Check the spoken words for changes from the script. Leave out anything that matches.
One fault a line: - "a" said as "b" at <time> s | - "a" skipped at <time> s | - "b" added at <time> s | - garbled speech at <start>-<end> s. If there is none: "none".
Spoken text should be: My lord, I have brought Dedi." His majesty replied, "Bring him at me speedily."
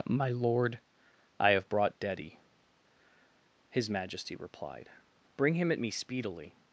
none